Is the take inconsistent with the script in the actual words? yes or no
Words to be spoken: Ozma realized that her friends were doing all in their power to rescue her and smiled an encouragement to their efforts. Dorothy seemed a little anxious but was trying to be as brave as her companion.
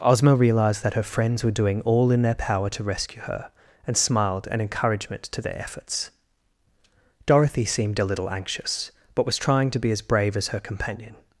no